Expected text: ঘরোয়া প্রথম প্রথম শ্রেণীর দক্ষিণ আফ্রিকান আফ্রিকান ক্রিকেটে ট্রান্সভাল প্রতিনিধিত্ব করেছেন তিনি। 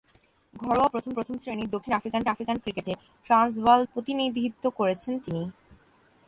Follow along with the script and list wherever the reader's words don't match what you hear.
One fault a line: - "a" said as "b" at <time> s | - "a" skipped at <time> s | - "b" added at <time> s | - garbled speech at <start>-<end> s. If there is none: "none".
none